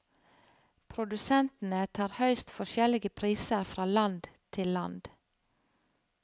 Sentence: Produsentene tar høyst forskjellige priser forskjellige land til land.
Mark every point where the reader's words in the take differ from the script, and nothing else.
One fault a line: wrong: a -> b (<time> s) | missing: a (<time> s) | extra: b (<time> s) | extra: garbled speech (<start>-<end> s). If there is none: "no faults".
wrong: forskjellige -> fra (3.8 s)